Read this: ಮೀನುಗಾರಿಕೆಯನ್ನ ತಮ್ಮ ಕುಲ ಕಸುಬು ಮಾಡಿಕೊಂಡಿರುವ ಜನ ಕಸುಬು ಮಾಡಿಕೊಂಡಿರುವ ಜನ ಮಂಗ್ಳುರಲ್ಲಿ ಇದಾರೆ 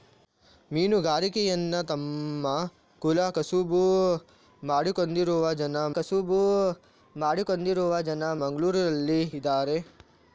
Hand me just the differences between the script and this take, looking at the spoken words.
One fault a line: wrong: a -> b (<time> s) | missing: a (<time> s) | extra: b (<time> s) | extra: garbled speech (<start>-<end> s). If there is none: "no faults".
no faults